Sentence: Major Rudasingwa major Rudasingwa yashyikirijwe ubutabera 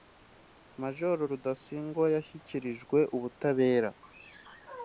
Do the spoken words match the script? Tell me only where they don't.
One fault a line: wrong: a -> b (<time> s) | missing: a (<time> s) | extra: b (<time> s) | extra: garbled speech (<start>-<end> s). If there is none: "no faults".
missing: major Rudasingwa (2.1 s)